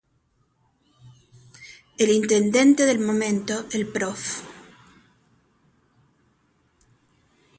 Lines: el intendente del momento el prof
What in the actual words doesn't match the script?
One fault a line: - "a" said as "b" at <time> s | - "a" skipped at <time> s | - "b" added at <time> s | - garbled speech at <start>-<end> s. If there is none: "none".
none